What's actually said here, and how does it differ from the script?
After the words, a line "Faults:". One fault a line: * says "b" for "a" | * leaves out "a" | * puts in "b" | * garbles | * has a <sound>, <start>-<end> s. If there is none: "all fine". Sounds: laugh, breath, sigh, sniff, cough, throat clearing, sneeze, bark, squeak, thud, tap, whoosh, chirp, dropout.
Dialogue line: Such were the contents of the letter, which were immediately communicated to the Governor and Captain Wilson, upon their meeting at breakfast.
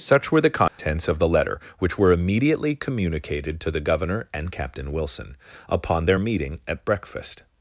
Such were the contents of the letter, which were immediately communicated to the Governor and Captain Wilson, upon their meeting at breakfast.
Faults:
* has a dropout, 0.7-0.8 s